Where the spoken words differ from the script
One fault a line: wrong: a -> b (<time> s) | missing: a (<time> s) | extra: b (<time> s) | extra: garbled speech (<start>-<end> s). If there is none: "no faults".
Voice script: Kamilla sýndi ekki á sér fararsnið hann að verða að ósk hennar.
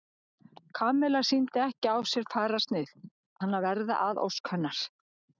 no faults